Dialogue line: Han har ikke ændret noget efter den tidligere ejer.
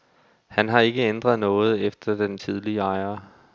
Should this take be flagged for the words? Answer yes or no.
no